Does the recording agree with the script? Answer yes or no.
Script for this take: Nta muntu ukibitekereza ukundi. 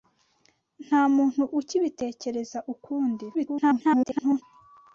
no